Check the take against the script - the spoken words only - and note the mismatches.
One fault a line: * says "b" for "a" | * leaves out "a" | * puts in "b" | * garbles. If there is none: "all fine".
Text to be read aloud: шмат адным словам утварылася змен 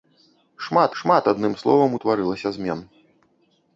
* puts in "шмат"